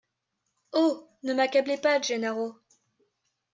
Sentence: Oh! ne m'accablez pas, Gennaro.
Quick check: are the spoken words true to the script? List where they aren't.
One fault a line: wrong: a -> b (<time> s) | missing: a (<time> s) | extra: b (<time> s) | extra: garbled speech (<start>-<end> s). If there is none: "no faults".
no faults